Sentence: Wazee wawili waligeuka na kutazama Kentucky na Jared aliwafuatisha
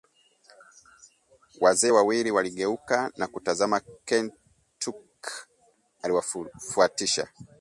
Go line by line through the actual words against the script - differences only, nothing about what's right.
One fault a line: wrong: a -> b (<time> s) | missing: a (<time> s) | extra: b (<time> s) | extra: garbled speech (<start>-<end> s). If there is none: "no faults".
missing: na Jared (5.3 s)